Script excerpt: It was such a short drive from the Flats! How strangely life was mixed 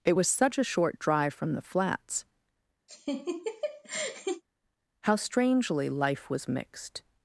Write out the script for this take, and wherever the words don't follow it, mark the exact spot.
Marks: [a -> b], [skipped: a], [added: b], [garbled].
It was such a short drive from the Flats! How strangely life was mixed